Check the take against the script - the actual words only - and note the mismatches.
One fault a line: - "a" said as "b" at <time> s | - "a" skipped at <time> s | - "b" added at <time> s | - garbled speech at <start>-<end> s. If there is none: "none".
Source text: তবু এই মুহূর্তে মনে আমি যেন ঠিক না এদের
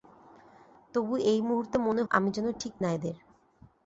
none